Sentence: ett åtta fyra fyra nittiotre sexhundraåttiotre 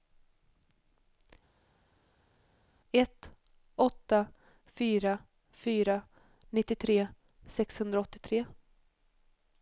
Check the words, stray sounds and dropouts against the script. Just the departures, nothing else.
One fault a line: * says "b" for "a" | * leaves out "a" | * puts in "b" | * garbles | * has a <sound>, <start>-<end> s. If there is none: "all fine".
all fine